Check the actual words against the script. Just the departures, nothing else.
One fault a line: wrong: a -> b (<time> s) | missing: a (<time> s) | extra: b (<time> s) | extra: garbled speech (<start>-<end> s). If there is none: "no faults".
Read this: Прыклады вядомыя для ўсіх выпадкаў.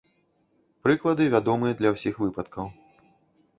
no faults